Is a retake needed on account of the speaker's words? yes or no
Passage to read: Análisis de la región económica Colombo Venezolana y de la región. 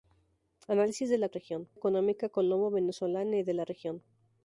no